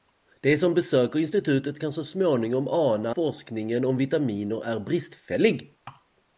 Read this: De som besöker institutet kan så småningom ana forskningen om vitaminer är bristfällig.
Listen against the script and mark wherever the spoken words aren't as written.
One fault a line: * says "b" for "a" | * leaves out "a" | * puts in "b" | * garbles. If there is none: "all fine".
all fine